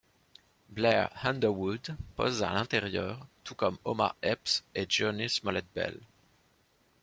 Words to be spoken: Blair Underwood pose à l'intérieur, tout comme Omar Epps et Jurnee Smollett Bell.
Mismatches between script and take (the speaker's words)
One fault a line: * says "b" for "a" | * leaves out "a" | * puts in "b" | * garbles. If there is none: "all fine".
all fine